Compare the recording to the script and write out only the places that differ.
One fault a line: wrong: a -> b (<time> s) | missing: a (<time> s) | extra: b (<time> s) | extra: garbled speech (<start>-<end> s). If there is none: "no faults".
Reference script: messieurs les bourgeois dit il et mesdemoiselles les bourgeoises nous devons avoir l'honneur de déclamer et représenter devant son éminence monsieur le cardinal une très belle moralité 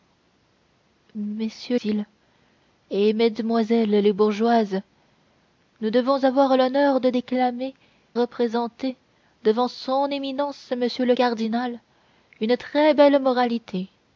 missing: les bourgeois dit (1.8 s)
missing: et (7.7 s)